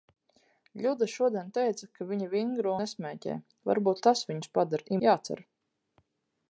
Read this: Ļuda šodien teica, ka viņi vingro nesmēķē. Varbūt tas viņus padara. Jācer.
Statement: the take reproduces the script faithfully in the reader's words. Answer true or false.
true